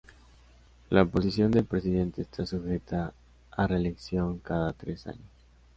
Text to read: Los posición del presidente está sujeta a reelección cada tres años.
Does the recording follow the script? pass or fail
fail